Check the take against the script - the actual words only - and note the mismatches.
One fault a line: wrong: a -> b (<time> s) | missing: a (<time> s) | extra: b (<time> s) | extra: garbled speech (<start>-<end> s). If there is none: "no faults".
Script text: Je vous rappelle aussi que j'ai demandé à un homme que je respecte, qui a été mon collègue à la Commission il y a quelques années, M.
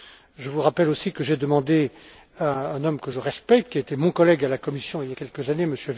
no faults